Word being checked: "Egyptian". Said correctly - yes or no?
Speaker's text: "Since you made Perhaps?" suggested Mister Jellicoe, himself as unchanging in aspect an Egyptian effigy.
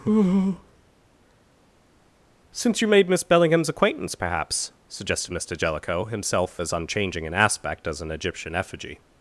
yes